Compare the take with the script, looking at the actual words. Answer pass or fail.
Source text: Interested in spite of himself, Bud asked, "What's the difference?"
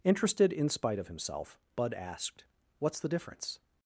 pass